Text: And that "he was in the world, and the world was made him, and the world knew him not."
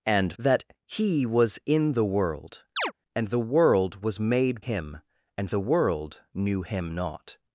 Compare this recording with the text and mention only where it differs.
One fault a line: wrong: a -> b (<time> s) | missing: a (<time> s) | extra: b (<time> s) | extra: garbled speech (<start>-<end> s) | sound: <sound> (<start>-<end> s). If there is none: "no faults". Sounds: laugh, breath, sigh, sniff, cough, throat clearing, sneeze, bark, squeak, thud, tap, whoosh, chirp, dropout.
sound: chirp (2.8-2.9 s)